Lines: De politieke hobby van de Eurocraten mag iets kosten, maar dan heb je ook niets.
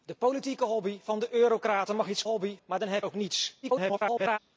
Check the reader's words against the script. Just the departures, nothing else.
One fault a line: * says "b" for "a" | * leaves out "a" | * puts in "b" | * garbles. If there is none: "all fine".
* says "hobby" for "kosten"
* leaves out "je"
* garbles